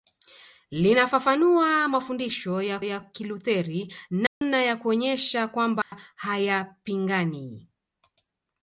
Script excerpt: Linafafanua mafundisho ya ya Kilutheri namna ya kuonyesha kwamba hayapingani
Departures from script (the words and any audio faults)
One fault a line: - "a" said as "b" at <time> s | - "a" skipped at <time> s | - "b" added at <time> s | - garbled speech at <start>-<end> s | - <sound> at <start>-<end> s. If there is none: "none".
- dropout at 4.3-4.4 s
- dropout at 5.8-5.9 s